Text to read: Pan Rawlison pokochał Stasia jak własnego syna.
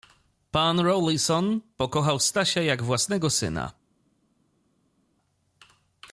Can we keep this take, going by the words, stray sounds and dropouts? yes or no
yes